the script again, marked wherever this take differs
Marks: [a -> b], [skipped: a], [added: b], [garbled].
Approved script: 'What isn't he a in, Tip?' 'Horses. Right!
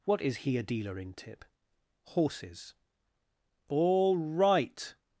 'What [isn't -> is] he a [added: dealer] in, Tip?' 'Horses. [added: All] Right!